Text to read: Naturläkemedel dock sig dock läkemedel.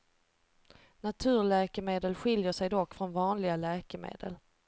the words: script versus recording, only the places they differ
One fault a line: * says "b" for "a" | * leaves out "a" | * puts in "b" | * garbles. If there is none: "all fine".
* says "skiljer" for "dock"
* puts in "från vanliga"